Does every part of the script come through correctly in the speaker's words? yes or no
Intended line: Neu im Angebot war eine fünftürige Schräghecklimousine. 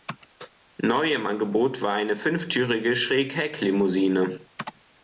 yes